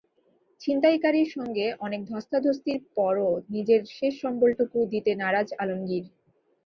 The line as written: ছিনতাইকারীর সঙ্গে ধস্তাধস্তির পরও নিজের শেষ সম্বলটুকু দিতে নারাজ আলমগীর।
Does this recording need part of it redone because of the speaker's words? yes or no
yes